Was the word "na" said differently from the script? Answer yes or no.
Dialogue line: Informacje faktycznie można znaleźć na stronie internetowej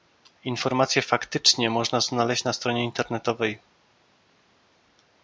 no